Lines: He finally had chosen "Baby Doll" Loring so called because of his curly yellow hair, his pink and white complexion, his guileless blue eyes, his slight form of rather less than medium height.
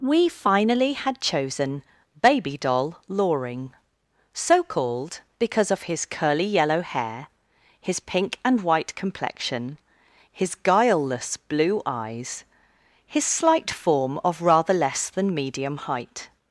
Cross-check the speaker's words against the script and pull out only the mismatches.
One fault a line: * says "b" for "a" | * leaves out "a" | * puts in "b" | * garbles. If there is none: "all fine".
* says "We" for "He"